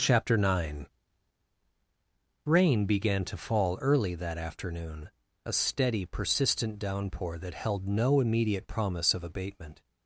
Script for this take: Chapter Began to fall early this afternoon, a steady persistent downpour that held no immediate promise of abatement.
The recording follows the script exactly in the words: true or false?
false